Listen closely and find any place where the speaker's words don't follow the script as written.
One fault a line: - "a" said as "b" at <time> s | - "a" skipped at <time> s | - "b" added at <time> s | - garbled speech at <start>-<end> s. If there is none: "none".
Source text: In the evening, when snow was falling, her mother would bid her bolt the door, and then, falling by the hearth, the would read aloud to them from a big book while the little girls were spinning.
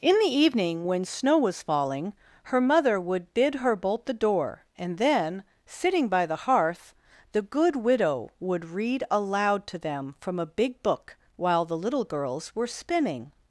- "falling" said as "sitting" at 5.7 s
- "good widow" added at 7.4 s